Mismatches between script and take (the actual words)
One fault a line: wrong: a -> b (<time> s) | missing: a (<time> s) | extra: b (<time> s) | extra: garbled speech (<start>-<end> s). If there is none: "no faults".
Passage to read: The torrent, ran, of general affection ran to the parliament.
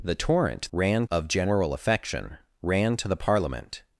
no faults